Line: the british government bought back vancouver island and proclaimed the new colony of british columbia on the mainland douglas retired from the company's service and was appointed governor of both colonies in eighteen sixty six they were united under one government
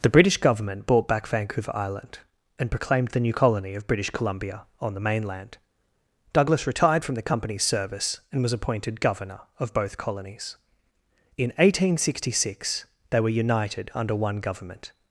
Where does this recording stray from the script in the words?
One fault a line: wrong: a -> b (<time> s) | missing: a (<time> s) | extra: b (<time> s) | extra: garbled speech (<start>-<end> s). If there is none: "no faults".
no faults